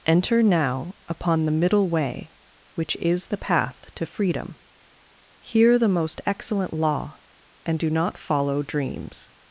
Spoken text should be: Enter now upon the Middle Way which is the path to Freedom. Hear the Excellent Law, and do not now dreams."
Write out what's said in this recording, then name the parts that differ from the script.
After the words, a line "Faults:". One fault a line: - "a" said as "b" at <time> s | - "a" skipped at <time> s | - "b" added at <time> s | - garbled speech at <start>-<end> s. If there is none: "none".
Enter now upon the Middle Way which is the path to Freedom. Hear the Most Excellent Law, and do not follow dreams."
Faults:
- "Most" added at 5.9 s
- "now" said as "follow" at 8.2 s